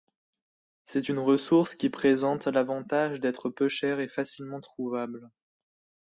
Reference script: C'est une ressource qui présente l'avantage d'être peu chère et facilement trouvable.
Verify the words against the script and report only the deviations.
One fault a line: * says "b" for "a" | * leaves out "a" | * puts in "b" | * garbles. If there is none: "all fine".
all fine